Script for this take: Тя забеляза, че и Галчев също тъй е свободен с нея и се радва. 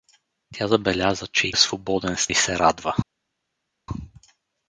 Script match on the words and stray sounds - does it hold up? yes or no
no